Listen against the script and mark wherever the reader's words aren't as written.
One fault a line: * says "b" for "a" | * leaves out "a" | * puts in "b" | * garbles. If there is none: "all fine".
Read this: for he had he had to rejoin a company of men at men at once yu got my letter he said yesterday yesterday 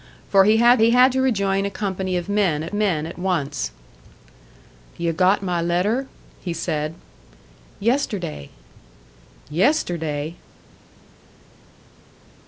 all fine